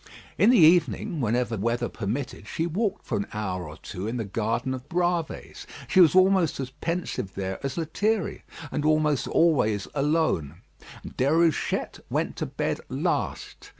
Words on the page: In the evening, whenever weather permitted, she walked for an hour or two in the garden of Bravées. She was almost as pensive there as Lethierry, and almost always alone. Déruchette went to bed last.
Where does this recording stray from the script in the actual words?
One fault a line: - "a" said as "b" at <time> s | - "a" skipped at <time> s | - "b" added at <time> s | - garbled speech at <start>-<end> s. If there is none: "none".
none